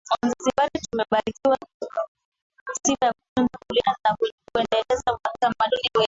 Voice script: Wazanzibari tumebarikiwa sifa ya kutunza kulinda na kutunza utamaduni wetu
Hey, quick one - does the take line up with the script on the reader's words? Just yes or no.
no